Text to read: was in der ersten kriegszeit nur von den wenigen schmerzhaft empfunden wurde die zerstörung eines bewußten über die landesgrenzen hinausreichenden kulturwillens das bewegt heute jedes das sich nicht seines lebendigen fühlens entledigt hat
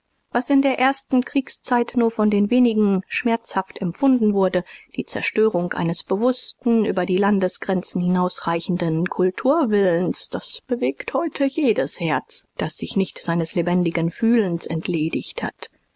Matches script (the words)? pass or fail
fail